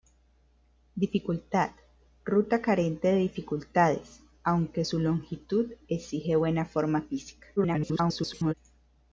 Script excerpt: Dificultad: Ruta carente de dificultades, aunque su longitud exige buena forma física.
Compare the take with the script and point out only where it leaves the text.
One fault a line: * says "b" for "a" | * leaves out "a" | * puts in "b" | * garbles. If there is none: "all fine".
* garbles